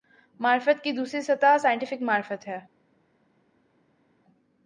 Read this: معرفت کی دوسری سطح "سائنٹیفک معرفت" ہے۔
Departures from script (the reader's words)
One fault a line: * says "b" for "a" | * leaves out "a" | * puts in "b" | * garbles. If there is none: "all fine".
all fine